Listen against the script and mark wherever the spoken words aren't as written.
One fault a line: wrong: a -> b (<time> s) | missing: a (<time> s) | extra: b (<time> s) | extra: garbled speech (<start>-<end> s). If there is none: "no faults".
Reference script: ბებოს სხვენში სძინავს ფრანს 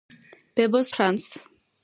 missing: სხვენში სძინავს (0.9 s)